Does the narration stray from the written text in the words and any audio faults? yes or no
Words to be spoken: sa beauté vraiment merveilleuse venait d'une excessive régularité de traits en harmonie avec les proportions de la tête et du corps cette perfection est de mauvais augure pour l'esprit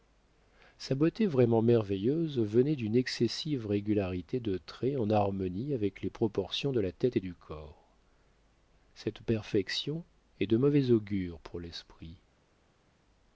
no